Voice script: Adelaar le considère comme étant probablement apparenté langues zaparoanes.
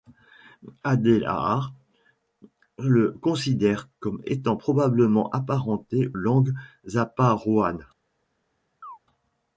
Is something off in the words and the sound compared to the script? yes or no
yes